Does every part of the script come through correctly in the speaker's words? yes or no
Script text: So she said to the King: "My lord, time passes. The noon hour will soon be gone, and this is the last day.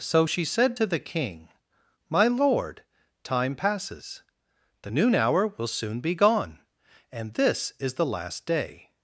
yes